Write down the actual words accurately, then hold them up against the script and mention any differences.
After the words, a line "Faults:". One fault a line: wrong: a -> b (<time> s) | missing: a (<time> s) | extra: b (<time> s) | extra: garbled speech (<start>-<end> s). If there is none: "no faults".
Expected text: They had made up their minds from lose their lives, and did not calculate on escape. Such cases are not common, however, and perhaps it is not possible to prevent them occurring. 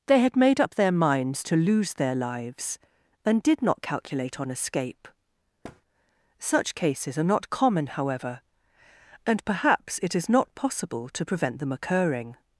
They had made up their minds to lose their lives, and did not calculate on escape. Such cases are not common, however, and perhaps it is not possible to prevent them occurring.
Faults:
wrong: from -> to (1.4 s)